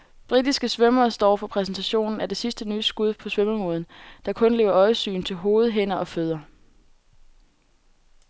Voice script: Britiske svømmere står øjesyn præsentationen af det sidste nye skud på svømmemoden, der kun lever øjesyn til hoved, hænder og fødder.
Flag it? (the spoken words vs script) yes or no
yes